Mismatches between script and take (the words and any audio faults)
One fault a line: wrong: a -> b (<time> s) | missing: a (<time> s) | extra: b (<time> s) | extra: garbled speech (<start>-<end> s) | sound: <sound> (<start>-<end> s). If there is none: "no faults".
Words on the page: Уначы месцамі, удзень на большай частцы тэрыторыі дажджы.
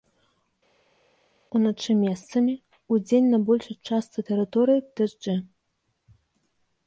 no faults